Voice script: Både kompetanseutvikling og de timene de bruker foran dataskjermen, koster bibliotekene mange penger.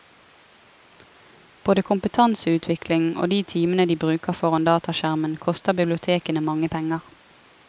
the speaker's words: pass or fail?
pass